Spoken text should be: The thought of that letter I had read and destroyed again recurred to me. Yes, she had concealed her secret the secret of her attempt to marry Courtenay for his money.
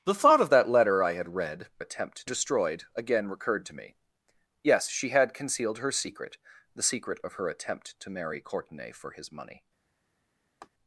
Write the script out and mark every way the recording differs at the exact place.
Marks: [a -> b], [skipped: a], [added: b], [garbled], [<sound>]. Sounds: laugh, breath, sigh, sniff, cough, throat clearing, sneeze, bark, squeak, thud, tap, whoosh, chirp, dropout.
The thought of that letter I had read [and -> attempt] destroyed again recurred to me. Yes, she had concealed her secret the secret of her attempt to marry Courtenay for his money. [laugh]